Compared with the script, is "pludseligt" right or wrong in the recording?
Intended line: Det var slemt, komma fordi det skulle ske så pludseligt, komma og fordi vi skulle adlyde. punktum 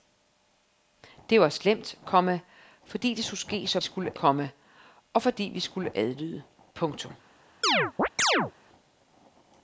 wrong